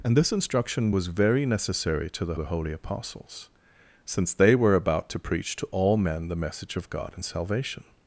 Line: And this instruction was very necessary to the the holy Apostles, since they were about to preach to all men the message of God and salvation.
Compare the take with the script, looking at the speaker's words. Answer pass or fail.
pass